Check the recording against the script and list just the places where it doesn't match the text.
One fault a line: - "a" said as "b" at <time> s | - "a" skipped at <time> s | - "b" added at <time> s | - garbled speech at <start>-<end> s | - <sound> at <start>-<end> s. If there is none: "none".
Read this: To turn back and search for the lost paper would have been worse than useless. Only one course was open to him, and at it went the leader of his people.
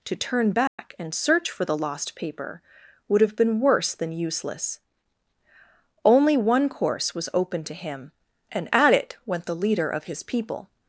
- dropout at 0.7-0.8 s